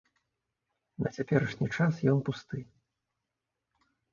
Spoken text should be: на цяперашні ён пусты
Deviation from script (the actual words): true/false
true